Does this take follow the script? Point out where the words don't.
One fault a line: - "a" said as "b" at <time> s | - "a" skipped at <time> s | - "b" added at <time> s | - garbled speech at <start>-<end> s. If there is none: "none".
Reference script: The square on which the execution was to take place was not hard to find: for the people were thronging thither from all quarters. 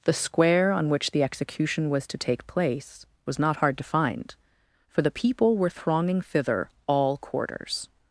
- "from" skipped at 6.7 s